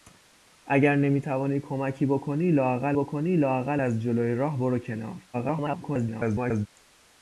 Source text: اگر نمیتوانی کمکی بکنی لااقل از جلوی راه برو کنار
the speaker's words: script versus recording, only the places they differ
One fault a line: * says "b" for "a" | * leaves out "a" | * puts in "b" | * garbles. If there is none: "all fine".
* puts in "بکنی لااقل"
* garbles